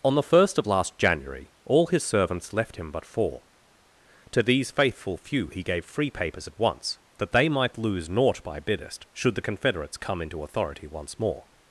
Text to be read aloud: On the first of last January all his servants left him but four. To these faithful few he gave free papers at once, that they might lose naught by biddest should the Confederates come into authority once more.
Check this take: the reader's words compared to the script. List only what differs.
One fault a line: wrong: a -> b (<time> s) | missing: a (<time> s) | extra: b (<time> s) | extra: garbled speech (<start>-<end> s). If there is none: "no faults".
no faults